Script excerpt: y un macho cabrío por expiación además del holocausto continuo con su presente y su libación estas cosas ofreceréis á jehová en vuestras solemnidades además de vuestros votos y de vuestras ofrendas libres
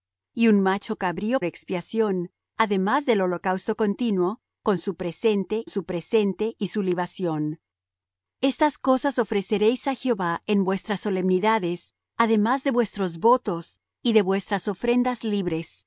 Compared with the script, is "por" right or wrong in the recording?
wrong